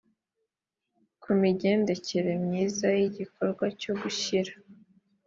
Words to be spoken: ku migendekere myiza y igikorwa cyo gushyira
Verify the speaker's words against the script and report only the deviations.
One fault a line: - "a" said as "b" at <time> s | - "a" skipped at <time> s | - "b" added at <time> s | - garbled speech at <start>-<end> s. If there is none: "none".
none